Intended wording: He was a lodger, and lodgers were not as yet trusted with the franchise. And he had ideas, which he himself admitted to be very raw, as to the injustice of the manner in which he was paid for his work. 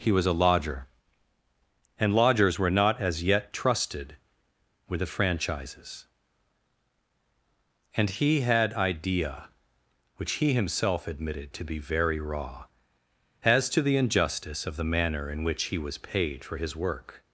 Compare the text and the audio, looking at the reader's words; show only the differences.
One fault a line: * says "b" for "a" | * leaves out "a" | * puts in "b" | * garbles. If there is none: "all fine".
* says "franchises" for "franchise"
* says "idea" for "ideas"